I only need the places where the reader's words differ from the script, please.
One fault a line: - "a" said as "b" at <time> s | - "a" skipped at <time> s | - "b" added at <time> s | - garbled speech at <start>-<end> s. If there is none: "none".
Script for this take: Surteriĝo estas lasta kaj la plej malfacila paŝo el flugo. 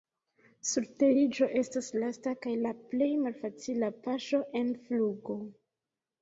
- "el" said as "en" at 4.6 s